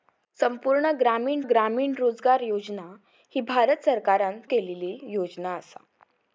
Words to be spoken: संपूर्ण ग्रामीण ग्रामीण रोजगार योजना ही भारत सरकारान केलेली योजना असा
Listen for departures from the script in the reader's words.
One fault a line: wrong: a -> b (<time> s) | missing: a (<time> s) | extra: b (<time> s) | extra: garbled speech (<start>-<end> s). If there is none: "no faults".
no faults